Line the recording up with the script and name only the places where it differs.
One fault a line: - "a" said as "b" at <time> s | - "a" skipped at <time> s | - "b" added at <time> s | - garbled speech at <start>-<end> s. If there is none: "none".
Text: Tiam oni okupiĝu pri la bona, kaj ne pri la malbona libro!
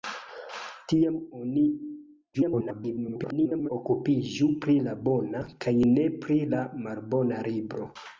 - garbled speech at 2.3-3.7 s